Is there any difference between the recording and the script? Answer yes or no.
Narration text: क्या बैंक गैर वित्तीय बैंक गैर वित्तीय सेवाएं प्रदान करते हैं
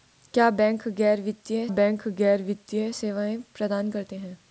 no